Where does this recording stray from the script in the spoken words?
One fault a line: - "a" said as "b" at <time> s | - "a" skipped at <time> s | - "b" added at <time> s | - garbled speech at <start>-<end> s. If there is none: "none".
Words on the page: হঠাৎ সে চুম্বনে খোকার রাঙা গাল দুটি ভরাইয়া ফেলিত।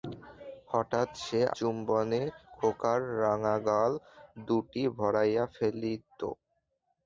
none